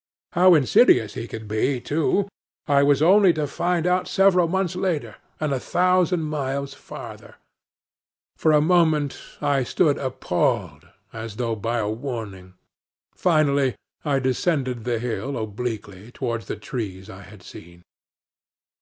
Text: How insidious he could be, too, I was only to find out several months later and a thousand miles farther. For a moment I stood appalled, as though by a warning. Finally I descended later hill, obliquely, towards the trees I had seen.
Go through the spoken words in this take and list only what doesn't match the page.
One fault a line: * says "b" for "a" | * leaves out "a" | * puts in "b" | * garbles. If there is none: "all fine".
* says "the" for "later"